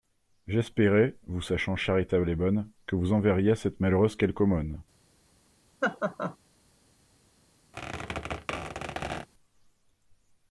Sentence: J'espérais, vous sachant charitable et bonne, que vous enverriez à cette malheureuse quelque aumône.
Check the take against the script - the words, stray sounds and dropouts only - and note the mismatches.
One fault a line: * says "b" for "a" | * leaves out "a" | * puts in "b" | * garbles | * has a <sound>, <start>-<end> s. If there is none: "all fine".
* has a laugh, 5.8-6.4 s
* has a squeak, 7.7-9.3 s